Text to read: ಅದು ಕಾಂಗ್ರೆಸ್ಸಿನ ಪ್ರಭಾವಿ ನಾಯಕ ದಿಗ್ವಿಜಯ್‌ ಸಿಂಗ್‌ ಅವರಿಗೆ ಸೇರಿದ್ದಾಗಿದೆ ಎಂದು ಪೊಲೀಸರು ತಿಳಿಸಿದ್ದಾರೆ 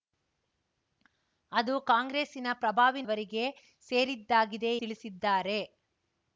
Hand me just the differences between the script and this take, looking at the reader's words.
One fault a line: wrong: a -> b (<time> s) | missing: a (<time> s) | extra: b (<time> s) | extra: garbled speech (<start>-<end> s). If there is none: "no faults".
missing: ನಾಯಕ ದಿಗ್ವಿಜಯ್ ಸಿಂಗ್ (3.0 s)
missing: ಎಂದು ಪೊಲೀಸರು (4.7 s)